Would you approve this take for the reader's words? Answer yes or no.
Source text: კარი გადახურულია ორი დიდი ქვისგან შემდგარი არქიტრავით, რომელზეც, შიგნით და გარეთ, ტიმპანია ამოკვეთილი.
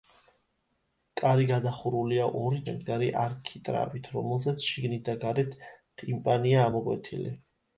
no